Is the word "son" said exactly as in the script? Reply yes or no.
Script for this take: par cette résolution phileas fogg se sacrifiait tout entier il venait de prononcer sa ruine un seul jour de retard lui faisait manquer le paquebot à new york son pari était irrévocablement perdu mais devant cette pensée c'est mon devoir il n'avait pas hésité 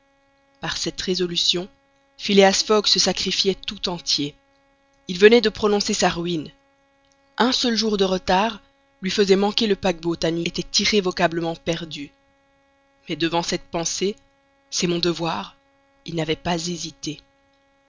no